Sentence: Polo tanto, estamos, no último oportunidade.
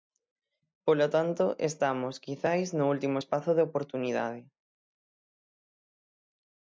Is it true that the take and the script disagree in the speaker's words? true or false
true